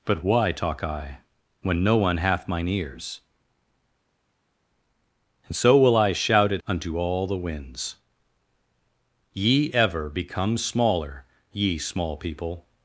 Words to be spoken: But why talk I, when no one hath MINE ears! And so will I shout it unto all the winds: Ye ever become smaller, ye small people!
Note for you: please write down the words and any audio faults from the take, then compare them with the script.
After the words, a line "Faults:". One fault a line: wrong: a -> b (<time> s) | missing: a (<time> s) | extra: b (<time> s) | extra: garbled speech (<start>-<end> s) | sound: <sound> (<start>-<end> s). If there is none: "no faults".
But why talk I, when no one hath MINE ears! And so will I shout it unto all the winds: Ye ever become smaller, ye small people!
Faults:
no faults